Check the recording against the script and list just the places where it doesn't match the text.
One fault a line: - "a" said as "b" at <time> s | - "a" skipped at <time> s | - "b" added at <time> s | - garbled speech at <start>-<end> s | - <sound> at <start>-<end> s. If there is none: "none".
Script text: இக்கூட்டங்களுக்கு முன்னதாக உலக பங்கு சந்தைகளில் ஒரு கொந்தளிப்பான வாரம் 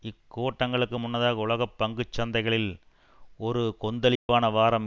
- dropout at 4.2-4.3 s